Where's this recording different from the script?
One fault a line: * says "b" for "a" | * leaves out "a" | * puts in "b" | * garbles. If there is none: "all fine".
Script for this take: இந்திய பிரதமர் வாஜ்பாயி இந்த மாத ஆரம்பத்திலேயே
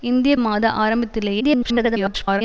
* leaves out "பிரதமர் வாஜ்பாயி இந்த"
* garbles